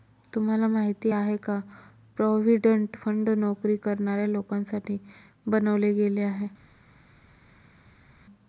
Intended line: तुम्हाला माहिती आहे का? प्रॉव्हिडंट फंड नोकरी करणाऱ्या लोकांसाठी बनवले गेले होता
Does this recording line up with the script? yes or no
no